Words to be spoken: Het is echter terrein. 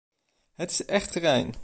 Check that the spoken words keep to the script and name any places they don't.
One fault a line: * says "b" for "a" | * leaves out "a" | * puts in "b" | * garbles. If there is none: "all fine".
all fine